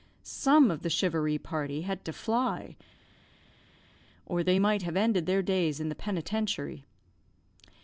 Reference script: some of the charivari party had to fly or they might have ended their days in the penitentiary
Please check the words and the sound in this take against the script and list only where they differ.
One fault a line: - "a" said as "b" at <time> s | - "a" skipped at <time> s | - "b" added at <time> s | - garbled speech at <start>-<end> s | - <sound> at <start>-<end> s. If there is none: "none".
none